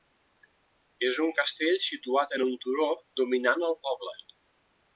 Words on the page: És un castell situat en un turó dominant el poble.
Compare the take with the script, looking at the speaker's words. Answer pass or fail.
pass